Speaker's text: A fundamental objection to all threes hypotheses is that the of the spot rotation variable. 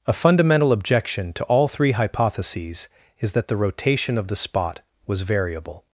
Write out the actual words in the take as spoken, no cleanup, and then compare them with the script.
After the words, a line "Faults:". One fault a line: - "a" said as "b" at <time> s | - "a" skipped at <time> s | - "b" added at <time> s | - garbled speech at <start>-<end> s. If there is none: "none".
A fundamental objection to all three hypotheses is that the rotation of the spot was variable.
Faults:
- "threes" said as "three" at 1.7 s
- "rotation" added at 3.6 s
- "rotation" said as "was" at 5.1 s